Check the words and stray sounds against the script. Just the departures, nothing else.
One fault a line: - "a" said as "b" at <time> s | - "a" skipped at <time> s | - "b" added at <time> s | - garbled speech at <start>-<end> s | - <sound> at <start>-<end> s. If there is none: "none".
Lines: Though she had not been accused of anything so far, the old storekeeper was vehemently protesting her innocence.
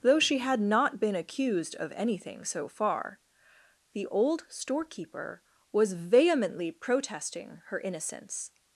none